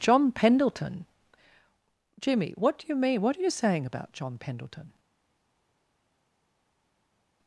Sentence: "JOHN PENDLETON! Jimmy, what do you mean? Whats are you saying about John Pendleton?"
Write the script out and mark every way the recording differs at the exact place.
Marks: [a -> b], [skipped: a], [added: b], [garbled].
"JOHN PENDLETON! Jimmy, what do you mean? [Whats -> What] are you saying about John Pendleton?"